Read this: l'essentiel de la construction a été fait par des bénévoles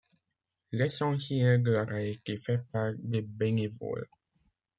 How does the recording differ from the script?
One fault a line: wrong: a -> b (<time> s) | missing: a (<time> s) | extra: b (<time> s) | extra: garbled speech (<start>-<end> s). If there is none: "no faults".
missing: construction (1.9 s)